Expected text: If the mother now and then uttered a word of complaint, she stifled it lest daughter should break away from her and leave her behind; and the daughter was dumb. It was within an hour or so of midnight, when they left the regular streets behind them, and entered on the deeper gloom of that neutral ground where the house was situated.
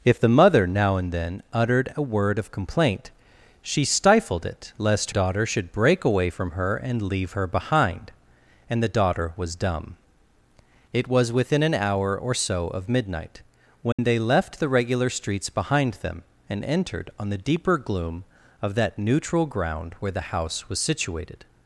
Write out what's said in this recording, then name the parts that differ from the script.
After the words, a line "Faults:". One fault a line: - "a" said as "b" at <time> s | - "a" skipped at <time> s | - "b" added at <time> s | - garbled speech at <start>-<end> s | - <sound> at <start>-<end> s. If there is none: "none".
If the mother now and then uttered a word of complaint, she stifled it lest daughter should break away from her and leave her behind; and the daughter was dumb. It was within an hour or so of midnight, when they left the regular streets behind them, and entered on the deeper gloom of that neutral ground where the house was situated.
Faults:
- dropout at 13.9-14.0 s